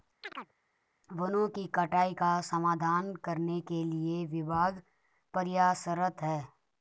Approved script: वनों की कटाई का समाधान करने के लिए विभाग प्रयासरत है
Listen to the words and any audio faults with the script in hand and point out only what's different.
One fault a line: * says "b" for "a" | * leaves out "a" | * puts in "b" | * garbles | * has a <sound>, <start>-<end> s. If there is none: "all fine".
* has a chirp, 0.2-0.5 s